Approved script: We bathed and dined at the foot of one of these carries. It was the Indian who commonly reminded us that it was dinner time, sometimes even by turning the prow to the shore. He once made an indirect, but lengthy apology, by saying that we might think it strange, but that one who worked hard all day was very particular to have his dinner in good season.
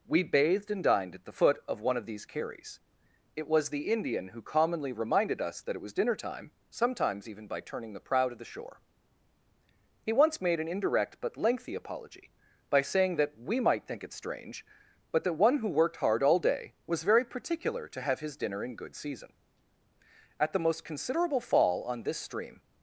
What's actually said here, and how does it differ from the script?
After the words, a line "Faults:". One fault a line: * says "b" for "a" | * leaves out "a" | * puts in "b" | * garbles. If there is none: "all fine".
We bathed and dined at the foot of one of these carries. It was the Indian who commonly reminded us that it was dinner time, sometimes even by turning the prow to the shore. He once made an indirect, but lengthy apology, by saying that we might think it strange, but that one who worked hard all day was very particular to have his dinner in good season. At the most considerable fall on this stream
Faults:
* puts in "At the most considerable fall on this stream"